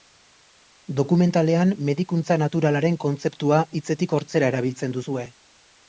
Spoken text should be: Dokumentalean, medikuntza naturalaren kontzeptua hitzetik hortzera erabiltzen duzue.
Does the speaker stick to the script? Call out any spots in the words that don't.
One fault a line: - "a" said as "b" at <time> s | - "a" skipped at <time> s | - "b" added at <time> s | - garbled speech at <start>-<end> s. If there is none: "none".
none